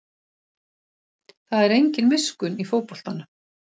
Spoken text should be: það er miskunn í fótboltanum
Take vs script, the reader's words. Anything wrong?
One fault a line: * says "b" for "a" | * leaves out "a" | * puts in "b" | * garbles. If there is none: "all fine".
* puts in "engin"